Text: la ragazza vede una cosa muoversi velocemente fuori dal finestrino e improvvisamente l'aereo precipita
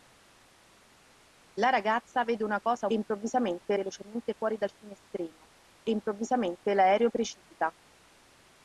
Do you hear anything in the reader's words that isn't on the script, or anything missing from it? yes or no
yes